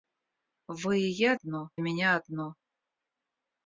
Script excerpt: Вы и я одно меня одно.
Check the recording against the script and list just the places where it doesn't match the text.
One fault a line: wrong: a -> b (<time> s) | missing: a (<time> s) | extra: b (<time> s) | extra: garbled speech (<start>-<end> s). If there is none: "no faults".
no faults